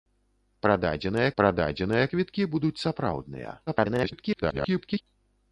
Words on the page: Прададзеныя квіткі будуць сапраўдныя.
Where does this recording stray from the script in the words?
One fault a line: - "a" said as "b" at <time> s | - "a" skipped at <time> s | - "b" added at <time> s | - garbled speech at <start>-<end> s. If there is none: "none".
- "прададзеныя" added at 1.4 s
- garbled speech at 3.7-5.0 s